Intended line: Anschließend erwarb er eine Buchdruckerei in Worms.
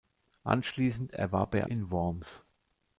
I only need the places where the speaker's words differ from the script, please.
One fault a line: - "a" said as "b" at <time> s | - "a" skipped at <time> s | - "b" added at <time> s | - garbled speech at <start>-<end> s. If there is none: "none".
- "eine Buchdruckerei" skipped at 1.7 s